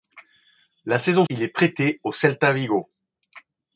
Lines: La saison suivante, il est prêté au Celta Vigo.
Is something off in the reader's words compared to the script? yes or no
yes